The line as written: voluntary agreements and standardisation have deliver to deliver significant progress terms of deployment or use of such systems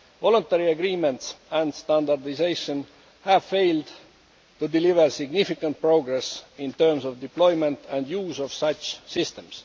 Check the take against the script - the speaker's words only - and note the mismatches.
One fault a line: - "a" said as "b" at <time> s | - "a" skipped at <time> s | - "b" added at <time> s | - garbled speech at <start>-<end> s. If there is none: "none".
- "deliver" said as "failed" at 3.4 s
- "in" added at 6.6 s
- "or" said as "and" at 7.9 s